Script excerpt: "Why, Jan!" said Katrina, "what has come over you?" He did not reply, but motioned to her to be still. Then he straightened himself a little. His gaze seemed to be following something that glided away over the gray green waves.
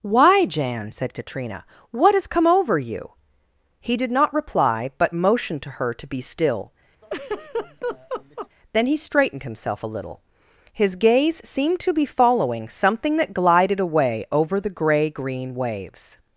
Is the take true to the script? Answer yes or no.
yes